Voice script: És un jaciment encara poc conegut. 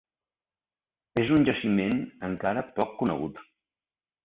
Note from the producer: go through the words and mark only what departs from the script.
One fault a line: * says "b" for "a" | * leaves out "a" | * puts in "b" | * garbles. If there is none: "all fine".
all fine